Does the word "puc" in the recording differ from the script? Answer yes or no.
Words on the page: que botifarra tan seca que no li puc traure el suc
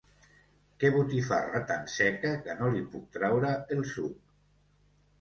no